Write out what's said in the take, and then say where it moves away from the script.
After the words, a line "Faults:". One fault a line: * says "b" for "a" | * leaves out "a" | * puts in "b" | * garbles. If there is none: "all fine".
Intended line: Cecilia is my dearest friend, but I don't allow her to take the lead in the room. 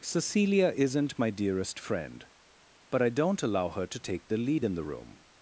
Cecilia isn't my dearest friend, but I don't allow her to take the lead in the room.
Faults:
* says "isn't" for "is"